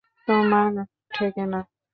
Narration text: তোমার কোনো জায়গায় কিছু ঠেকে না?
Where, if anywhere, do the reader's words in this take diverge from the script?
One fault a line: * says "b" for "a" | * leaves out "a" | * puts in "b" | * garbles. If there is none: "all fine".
* leaves out "কোনো জায়গায় কিছু"